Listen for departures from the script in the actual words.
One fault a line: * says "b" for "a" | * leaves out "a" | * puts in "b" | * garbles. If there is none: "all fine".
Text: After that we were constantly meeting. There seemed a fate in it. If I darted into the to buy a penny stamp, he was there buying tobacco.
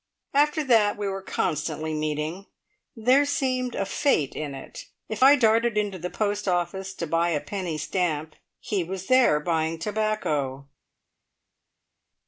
* puts in "post office"